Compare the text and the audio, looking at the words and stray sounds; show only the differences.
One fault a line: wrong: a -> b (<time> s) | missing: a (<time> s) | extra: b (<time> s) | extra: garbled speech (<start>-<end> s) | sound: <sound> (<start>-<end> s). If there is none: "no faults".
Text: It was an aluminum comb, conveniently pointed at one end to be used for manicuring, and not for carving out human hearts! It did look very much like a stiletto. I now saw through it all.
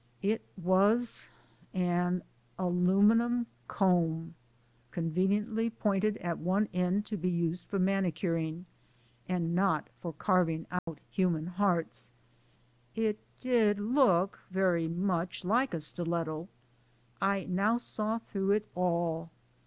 sound: dropout (10.8-10.9 s)